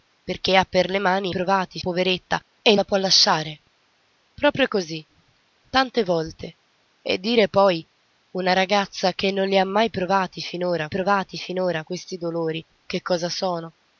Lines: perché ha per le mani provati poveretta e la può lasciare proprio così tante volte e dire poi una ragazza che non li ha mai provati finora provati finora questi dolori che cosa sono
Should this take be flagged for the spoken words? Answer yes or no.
no